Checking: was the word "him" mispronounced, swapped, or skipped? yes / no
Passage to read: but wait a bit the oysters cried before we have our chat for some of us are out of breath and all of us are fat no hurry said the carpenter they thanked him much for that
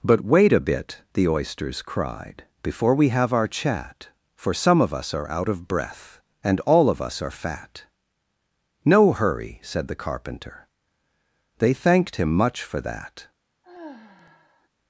no